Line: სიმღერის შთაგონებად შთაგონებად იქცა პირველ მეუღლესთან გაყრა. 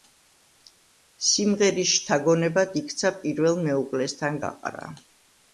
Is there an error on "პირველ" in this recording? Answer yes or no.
no